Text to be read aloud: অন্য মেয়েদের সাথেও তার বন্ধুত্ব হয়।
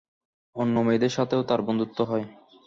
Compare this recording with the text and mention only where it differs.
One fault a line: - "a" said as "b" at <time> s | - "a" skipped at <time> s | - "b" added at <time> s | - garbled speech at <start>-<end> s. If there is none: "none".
none